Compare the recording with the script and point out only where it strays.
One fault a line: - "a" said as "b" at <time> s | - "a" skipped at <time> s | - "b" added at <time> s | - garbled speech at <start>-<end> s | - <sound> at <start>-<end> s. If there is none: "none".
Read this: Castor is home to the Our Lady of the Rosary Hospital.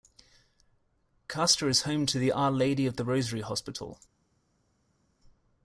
none